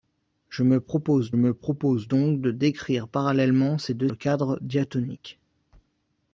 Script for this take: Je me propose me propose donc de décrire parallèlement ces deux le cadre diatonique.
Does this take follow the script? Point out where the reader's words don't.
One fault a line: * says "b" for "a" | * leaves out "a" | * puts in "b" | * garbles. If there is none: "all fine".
all fine